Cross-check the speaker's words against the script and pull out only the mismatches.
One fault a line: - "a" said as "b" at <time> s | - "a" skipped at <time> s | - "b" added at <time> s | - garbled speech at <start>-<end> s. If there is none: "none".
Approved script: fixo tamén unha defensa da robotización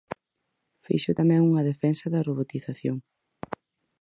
none